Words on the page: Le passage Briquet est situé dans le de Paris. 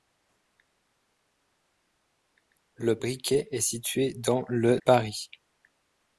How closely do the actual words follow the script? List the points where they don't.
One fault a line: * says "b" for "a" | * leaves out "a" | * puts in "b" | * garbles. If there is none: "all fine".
* leaves out "passage"
* leaves out "de"